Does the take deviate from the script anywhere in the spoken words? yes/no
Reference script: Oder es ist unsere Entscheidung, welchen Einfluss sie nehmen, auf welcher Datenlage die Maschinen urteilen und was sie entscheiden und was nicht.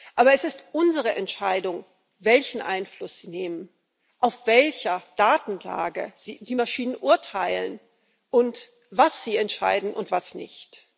yes